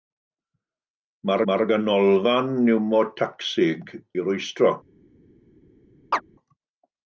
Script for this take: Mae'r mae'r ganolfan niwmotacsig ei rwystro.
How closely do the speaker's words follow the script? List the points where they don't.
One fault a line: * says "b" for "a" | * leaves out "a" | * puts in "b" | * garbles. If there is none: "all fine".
all fine